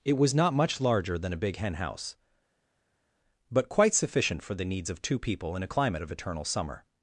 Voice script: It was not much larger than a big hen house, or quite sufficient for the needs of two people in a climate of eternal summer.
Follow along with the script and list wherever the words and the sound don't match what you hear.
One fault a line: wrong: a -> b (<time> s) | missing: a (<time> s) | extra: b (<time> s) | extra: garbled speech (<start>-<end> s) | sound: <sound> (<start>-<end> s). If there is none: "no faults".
wrong: or -> but (3.5 s)